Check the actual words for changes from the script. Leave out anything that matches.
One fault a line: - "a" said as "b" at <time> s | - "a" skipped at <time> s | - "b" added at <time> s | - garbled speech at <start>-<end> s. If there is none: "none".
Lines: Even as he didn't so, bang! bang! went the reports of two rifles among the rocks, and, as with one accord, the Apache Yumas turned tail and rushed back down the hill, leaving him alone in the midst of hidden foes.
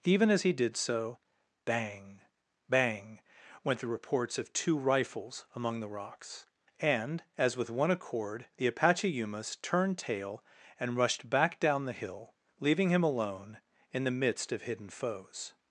- "didn't" said as "did" at 0.5 s